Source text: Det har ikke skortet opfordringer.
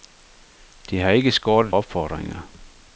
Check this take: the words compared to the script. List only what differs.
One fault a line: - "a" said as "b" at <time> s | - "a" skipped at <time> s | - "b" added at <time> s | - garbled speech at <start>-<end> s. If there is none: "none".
none